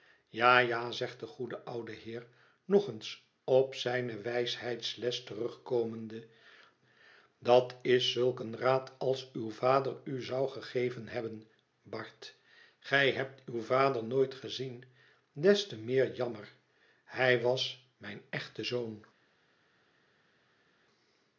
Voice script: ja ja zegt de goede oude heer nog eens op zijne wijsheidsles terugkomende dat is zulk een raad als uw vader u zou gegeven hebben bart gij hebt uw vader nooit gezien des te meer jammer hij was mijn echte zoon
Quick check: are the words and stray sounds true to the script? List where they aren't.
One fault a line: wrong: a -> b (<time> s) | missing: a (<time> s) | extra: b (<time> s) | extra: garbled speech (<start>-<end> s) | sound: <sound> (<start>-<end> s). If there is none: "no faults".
no faults